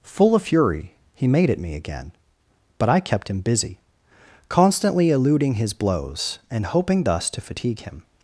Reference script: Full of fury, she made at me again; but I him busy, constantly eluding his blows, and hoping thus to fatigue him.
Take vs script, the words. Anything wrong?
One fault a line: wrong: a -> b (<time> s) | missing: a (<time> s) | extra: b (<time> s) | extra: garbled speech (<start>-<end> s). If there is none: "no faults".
wrong: she -> he (1.1 s)
extra: kept (3.0 s)